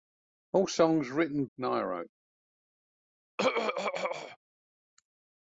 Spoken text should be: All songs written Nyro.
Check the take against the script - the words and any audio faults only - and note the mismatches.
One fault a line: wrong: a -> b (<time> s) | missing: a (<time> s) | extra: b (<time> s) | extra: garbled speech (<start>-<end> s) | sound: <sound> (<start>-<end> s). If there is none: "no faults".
sound: throat clearing (3.4-4.4 s)